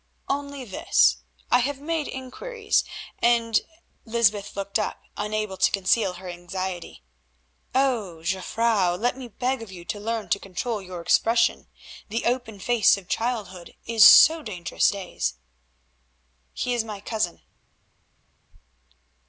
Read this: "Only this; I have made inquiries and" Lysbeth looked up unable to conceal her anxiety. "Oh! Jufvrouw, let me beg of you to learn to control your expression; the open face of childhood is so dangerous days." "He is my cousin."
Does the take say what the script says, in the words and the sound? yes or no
yes